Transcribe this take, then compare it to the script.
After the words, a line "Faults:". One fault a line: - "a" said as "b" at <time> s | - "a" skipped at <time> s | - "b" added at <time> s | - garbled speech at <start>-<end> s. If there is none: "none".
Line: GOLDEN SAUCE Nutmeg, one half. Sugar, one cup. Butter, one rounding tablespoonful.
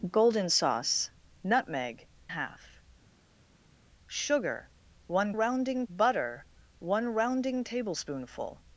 GOLDEN SAUCE Nutmeg, half. Sugar, one rounding. Butter, one rounding tablespoonful.
Faults:
- "one" skipped at 2.1 s
- "cup" said as "rounding" at 5.3 s